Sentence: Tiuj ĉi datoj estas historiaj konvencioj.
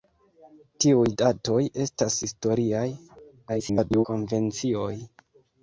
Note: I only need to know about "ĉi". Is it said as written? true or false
false